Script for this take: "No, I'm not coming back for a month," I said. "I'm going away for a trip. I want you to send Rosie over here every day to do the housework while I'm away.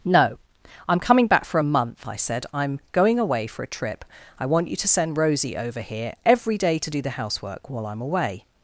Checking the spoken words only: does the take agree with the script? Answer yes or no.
no